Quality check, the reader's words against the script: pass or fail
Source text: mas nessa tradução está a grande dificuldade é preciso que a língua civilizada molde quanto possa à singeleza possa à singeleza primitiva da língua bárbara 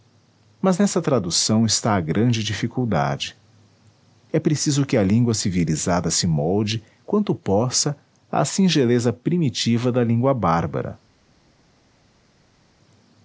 fail